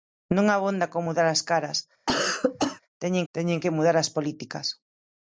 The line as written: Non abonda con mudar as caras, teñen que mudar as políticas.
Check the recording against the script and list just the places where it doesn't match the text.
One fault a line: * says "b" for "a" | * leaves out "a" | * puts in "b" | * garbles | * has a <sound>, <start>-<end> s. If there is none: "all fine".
* has a cough, 2.1-2.8 s
* puts in "teñen"